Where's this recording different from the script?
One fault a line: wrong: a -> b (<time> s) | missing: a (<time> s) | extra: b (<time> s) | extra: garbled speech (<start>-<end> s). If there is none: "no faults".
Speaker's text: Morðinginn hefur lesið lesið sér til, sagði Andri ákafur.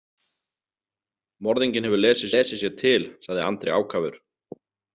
no faults